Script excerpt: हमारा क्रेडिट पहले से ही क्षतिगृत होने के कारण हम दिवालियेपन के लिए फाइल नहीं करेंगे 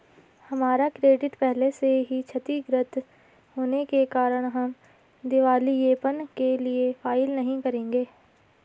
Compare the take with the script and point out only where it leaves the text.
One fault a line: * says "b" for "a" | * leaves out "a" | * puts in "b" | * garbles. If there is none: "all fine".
all fine